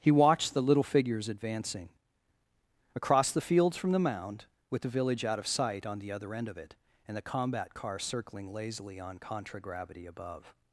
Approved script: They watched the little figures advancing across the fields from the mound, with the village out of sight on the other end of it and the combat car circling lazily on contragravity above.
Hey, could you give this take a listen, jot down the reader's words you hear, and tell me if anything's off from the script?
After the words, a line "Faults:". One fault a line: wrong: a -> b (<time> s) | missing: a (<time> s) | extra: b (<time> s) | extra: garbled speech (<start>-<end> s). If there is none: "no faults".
He watched the little figures advancing across the fields from the mound, with the village out of sight on the other end of it and the combat car circling lazily on contragravity above.
Faults:
wrong: They -> He (0.0 s)